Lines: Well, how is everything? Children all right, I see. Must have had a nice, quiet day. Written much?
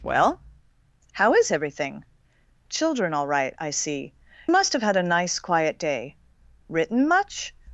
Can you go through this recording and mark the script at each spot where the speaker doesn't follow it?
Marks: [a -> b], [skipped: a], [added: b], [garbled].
Well, how is everything? Children all right, I see. Must have had a nice, quiet day. Written much?